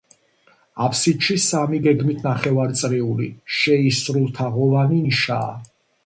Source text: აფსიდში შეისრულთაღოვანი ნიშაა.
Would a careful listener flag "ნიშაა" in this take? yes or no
no